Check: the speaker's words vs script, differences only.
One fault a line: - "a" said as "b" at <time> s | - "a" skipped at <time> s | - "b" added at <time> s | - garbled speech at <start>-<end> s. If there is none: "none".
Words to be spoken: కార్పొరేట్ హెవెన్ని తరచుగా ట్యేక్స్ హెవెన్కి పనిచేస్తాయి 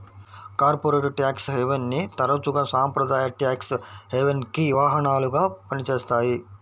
- "ట్యాక్స్" added at 1.2 s
- "సాంప్రదాయ" added at 2.7 s
- "వాహనాలుగా" added at 4.8 s